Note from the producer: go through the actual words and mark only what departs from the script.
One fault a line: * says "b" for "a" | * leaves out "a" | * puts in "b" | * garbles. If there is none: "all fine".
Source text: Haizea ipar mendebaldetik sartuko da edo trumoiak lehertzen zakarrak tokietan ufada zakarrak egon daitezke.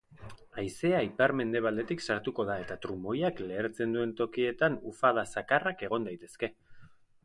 * says "eta" for "edo"
* says "duen" for "zakarrak"